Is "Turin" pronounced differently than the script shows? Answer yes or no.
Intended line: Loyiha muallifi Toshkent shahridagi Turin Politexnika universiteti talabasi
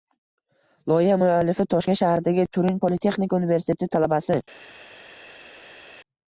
no